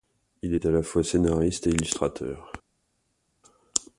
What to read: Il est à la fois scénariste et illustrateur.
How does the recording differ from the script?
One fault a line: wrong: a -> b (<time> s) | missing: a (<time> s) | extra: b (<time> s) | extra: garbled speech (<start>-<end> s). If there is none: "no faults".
no faults